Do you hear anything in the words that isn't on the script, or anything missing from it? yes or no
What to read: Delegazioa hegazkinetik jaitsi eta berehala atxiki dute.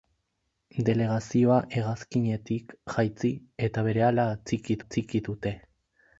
yes